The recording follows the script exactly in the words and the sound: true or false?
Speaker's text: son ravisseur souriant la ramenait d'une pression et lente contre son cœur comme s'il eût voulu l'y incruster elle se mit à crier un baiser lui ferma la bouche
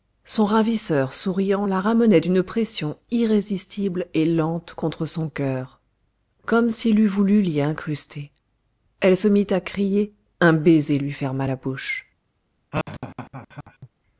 false